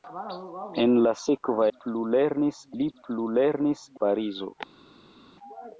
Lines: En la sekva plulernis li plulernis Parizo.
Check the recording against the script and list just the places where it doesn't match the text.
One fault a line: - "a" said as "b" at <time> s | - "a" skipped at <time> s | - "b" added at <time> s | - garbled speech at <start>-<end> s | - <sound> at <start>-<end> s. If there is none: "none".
none